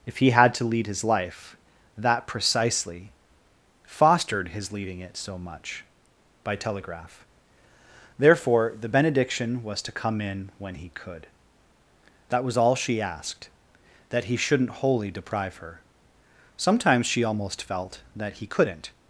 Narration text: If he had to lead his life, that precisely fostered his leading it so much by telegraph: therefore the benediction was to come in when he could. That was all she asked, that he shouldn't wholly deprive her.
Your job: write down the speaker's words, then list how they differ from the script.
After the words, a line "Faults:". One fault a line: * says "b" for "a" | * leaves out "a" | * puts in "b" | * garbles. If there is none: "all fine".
If he had to lead his life, that precisely fostered his leading it so much by telegraph: therefore the benediction was to come in when he could. That was all she asked, that he shouldn't wholly deprive her. Sometimes she almost felt that he couldn't
Faults:
* puts in "Sometimes she almost felt that he couldn't"